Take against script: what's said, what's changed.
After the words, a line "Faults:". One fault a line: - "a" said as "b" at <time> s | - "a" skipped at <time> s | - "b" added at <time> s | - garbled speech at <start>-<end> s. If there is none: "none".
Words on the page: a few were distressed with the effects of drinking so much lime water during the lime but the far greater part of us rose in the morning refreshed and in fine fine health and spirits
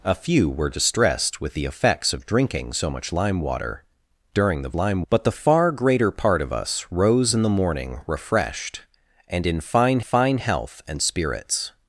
a few were distressed with the effects of drinking so much lime water during the lime but the far greater part of us rose in the morning refreshed and in fine fine health and spirits
Faults:
none